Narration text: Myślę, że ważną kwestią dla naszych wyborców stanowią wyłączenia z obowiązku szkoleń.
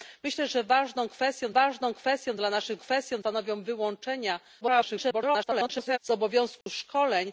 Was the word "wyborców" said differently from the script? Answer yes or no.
yes